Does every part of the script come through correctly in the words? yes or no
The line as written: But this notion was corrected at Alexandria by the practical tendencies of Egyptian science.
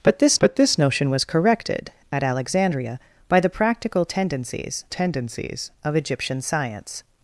no